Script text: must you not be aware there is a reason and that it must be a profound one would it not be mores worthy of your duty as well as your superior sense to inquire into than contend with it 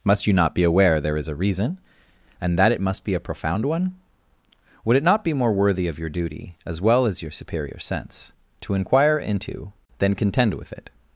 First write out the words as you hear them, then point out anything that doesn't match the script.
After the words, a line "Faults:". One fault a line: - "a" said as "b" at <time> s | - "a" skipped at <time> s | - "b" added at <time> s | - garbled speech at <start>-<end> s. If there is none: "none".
must you not be aware there is a reason and that it must be a profound one would it not be more worthy of your duty as well as your superior sense to inquire into than contend with it
Faults:
- "mores" said as "more" at 5.3 s